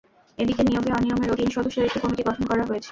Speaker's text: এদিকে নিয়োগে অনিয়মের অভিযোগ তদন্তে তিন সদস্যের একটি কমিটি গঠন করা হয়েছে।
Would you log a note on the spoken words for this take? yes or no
yes